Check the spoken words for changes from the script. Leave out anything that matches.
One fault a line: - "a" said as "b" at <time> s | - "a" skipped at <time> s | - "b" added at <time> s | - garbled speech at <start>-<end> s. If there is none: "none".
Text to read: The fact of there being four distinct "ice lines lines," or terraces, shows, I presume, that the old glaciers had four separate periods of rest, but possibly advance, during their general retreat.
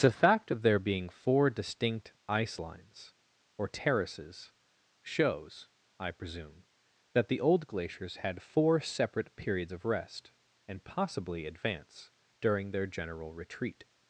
- "lines" skipped at 3.1 s
- "but" said as "and" at 10.7 s